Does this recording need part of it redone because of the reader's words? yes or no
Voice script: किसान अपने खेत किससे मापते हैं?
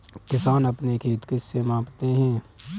no